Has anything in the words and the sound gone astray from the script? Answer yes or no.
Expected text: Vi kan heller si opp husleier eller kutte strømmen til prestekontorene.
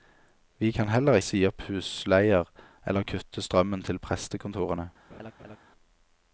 yes